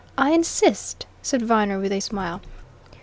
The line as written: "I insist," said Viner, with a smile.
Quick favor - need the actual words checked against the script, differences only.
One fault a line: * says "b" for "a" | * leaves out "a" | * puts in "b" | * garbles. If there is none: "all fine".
all fine